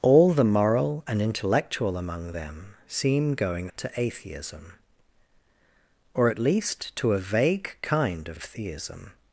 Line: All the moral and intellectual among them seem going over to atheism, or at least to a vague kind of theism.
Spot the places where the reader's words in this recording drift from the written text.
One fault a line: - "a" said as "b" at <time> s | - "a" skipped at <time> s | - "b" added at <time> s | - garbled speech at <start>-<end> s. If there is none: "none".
- "over" skipped at 3.7 s
- "of" added at 8.3 s